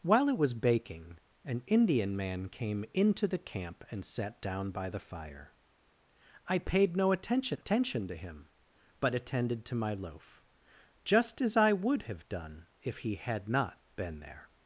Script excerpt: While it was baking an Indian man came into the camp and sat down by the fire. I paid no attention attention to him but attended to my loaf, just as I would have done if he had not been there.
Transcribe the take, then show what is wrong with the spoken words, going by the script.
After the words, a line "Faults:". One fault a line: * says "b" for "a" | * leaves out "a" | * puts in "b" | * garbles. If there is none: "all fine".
While it was baking an Indian man came into the camp and sat down by the fire. I paid no attention attention to him but attended to my loaf, just as I would have done if he had not been there.
Faults:
all fine